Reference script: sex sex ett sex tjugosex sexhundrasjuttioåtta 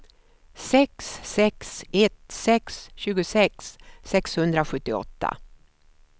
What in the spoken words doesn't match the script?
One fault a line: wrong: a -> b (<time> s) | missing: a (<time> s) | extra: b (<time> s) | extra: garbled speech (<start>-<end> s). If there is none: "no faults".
no faults